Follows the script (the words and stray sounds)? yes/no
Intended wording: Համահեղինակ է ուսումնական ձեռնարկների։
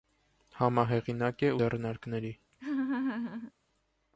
no